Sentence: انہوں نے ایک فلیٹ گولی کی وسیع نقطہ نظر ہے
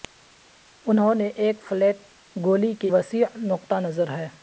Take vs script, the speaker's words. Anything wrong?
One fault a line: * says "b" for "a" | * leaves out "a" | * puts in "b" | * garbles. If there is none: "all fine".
all fine